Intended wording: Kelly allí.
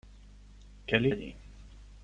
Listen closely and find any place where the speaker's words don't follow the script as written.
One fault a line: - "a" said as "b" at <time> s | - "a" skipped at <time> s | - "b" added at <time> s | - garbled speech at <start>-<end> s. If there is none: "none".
none